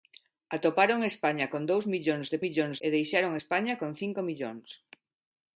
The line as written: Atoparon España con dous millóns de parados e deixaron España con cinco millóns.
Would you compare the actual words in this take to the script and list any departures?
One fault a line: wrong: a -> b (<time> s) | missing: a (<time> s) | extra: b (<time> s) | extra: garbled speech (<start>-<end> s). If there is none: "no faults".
wrong: parados -> millóns (2.4 s)